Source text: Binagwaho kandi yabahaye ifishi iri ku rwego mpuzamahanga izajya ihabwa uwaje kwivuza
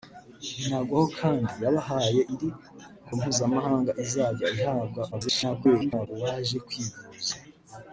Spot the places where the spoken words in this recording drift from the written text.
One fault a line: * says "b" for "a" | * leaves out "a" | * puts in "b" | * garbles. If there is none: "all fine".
* leaves out "ifishi"
* leaves out "rwego"
* garbles